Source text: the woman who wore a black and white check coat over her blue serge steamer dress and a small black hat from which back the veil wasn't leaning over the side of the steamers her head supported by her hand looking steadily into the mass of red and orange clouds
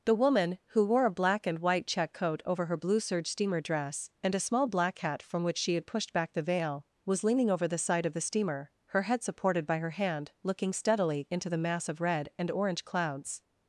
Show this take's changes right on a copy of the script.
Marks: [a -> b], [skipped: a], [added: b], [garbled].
the woman who wore a black and white check coat over her blue serge steamer dress and a small black hat from which [added: she had pushed] back the veil [wasn't -> was] leaning over the side of the [steamers -> steamer] her head supported by her hand looking steadily into the mass of red and orange clouds